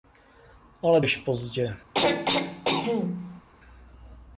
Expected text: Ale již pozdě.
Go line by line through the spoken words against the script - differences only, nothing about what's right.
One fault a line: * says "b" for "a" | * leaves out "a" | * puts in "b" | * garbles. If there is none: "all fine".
all fine